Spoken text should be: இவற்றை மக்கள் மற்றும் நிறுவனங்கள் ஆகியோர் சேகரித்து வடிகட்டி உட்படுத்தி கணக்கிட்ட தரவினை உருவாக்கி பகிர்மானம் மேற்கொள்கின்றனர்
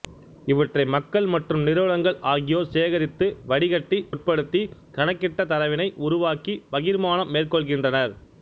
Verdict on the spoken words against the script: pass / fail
pass